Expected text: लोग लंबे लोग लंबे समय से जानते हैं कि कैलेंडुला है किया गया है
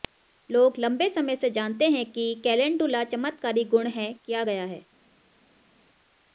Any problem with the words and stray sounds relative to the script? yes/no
yes